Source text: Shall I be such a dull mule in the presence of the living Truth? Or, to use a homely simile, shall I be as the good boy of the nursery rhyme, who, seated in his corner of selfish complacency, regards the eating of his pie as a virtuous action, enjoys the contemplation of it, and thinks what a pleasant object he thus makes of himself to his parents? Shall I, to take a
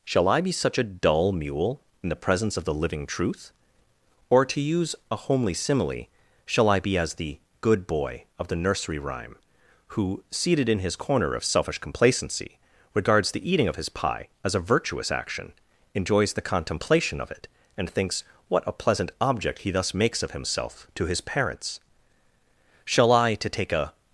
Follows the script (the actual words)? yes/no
yes